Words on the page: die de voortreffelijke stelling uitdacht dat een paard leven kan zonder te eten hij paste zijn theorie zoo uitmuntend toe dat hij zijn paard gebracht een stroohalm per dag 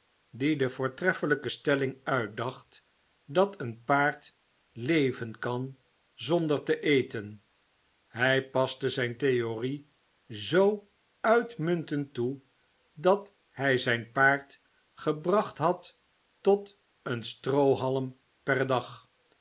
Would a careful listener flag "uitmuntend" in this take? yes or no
no